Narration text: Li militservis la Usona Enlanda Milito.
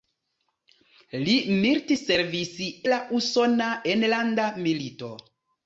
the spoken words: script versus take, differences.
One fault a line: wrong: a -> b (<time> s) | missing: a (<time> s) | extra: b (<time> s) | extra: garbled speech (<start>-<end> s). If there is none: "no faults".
no faults